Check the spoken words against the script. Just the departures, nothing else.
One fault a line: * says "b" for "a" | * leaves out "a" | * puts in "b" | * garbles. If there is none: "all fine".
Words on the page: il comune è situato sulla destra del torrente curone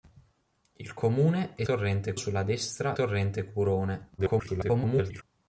* says "torrente" for "situato"
* leaves out "del"
* garbles